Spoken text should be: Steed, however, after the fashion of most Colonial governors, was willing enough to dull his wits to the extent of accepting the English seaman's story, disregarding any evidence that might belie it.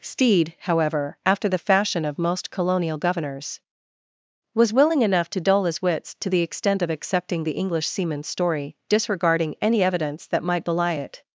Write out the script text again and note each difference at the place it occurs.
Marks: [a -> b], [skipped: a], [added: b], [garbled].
Steed, however, after the fashion of most Colonial governors, was willing enough to dull his wits to the extent of accepting the English seaman's story, disregarding any evidence that might belie it.